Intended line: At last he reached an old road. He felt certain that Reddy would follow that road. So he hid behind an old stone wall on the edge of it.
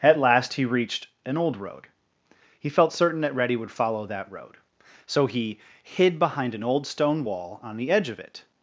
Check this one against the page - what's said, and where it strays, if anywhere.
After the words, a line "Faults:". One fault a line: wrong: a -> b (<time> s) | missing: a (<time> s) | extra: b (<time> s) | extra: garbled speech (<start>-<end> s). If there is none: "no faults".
At last he reached an old road. He felt certain that Reddy would follow that road. So he hid behind an old stone wall on the edge of it.
Faults:
no faults